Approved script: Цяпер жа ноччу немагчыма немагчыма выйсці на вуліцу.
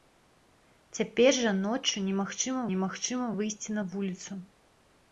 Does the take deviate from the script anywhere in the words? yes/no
no